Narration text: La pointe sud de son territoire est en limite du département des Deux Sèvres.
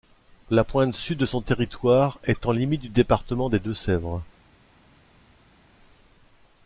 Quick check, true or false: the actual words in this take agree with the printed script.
true